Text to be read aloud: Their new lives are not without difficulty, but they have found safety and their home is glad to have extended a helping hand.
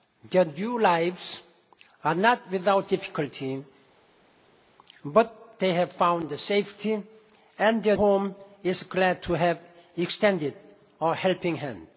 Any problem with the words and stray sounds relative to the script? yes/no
no